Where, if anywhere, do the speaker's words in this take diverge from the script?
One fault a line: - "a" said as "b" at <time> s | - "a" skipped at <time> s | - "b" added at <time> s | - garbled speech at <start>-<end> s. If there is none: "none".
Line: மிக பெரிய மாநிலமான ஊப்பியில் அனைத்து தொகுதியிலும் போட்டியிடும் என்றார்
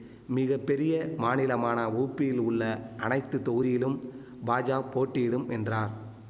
- "உள்ள" added at 2.4 s
- "பாஜா" added at 4.4 s